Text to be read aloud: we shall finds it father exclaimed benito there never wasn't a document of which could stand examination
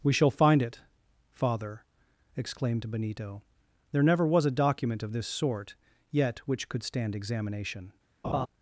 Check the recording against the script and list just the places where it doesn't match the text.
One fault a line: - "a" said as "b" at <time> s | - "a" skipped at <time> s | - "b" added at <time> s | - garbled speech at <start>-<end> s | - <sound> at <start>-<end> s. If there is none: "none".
- "finds" said as "find" at 0.3 s
- "wasn't" said as "was" at 4.2 s
- "this sort yet" added at 5.1 s
- laugh at 8.2-8.5 s